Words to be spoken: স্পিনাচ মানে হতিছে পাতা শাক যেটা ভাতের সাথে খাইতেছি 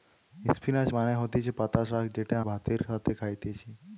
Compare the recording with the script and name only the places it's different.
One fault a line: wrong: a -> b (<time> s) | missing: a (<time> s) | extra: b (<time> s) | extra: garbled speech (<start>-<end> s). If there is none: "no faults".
no faults